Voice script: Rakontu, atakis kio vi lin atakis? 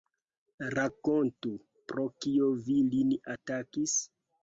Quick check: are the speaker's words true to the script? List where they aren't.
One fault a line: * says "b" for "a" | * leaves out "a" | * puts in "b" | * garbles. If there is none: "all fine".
* says "pro" for "atakis"